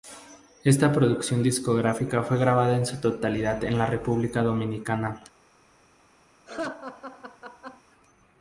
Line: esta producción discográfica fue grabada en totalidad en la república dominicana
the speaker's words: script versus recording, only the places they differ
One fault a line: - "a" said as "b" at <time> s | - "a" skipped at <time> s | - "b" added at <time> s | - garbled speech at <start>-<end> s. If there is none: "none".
- "su" added at 2.9 s